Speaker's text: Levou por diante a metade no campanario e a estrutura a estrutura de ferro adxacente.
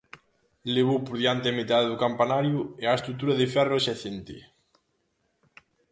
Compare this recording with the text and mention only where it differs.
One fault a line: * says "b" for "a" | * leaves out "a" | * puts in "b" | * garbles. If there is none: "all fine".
* says "do" for "no"
* leaves out "a estrutura"